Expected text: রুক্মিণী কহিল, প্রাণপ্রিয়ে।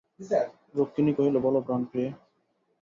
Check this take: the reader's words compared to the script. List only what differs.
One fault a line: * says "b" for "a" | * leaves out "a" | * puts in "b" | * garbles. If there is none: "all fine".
* puts in "বলো"